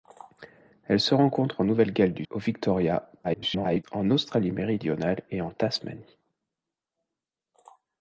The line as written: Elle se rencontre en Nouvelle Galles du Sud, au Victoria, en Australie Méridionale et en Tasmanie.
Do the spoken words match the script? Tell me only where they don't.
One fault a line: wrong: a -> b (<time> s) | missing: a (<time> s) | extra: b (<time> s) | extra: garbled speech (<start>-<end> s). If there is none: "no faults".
missing: Sud (2.2 s)
extra: garbled speech (3.2-3.8 s)